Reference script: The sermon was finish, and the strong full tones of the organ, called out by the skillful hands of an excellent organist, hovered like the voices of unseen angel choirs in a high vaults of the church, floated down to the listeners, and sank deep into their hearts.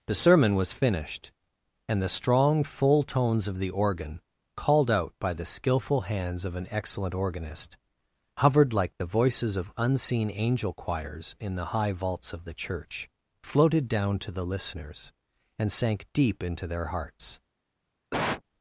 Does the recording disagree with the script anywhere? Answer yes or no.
yes